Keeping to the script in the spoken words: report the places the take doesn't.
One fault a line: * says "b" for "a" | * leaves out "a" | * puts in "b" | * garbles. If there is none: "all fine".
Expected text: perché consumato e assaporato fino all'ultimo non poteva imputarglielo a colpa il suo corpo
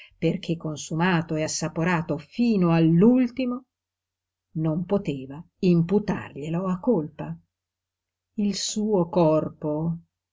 all fine